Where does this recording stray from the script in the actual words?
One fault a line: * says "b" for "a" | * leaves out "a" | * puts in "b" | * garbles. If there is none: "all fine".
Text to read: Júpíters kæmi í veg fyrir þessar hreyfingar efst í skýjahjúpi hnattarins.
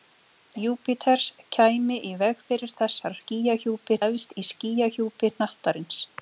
* says "skýjahjúpi" for "hreyfingar"